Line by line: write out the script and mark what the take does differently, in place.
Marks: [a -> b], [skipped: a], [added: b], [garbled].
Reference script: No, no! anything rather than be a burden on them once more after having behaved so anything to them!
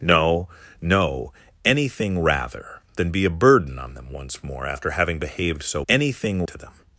No, no! anything rather than be a burden on them once more after having behaved so anything to them!